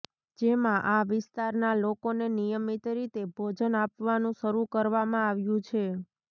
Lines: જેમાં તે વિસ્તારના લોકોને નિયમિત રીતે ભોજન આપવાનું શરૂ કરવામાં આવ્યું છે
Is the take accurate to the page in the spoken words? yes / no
no